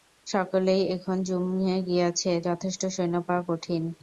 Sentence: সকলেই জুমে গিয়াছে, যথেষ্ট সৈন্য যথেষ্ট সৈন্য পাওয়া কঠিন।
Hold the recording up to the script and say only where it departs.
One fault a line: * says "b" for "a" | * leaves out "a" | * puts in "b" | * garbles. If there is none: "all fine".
* puts in "এখন"
* leaves out "যথেষ্ট সৈন্য"